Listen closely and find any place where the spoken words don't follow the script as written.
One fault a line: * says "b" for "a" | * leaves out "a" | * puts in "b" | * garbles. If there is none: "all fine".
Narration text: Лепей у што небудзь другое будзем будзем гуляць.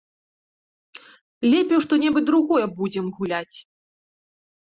* leaves out "будзем"